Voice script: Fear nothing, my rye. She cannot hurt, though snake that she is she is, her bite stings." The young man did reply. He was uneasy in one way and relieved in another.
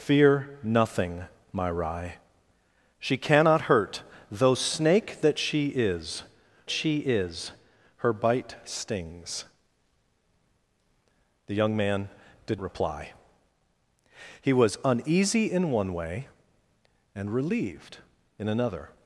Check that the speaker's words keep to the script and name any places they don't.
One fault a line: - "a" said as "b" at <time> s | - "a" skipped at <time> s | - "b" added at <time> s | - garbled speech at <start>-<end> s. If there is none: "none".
none